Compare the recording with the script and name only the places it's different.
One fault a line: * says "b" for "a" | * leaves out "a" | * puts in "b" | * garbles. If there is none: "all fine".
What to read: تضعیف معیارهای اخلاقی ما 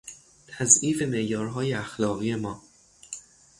all fine